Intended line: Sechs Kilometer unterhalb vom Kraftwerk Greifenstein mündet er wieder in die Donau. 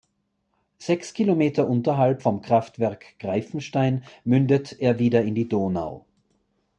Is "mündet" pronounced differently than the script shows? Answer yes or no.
no